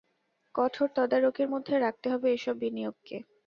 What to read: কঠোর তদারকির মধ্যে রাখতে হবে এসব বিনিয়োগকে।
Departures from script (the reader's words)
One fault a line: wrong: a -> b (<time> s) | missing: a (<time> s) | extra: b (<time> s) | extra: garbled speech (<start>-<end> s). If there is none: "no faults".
no faults